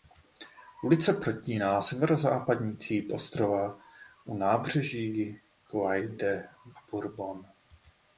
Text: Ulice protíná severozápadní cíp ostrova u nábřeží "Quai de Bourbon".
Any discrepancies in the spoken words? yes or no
no